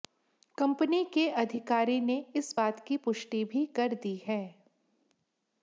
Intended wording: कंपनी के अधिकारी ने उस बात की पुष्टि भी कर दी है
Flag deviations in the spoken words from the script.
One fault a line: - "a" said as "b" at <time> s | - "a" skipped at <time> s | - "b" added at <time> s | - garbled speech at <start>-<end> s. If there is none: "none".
- "उस" said as "इस" at 2.4 s